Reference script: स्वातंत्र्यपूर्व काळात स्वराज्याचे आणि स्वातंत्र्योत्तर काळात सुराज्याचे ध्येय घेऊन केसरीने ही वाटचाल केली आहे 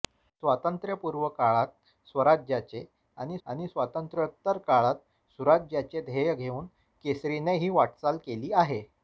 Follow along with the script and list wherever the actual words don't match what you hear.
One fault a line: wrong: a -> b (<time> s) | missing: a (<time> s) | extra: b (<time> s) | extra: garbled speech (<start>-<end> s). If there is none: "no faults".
extra: आणि (3.5 s)